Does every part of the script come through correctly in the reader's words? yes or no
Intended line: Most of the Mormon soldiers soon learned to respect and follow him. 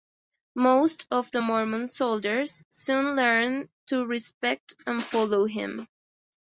yes